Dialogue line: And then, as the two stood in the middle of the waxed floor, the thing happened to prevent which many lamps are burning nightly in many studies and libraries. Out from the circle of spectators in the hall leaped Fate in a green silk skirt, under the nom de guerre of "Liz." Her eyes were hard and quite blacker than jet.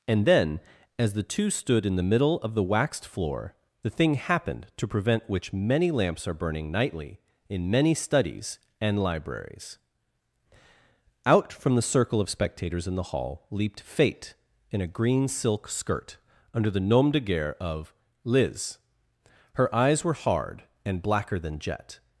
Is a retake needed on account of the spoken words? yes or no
yes